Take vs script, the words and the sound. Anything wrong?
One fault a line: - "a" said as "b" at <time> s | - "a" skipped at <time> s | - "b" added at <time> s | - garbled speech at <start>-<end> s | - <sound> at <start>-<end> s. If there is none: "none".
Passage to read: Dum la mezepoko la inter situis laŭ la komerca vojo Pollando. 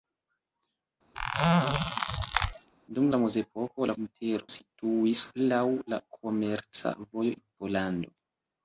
- squeak at 1.1-2.7 s